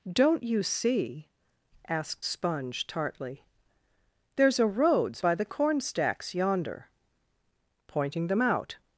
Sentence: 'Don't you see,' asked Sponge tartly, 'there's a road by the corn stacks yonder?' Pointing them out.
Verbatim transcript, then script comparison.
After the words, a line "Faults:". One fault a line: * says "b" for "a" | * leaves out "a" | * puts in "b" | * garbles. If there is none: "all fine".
'Don't you see,' asked Sponge tartly, 'there's a roads by the corn stacks yonder?' Pointing them out.
Faults:
* says "roads" for "road"